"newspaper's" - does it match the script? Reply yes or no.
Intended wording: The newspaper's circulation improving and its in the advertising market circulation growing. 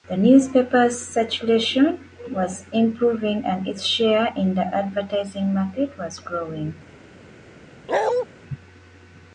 yes